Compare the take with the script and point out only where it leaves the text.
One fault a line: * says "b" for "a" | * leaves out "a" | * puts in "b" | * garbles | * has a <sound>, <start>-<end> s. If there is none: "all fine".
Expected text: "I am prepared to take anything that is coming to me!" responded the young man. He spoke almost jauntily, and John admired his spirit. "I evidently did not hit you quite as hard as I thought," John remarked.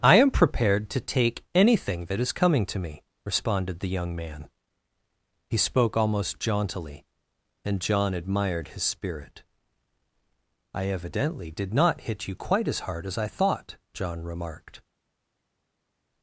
all fine